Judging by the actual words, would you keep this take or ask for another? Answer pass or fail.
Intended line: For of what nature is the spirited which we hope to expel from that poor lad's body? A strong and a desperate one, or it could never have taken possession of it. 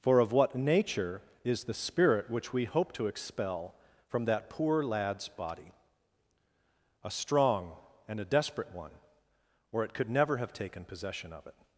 fail